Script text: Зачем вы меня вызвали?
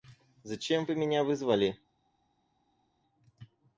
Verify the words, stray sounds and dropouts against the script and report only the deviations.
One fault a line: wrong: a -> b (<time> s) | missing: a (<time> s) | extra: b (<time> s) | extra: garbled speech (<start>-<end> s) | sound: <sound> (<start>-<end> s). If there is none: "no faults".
no faults